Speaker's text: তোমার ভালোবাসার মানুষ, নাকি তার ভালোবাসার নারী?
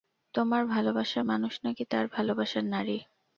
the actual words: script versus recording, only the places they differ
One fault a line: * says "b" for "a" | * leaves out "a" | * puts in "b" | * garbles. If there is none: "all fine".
all fine